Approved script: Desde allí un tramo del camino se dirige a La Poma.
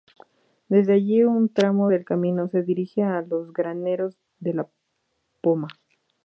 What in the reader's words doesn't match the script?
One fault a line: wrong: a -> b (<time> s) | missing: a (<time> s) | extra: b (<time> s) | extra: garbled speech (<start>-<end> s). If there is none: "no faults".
extra: los Graneros de (3.2 s)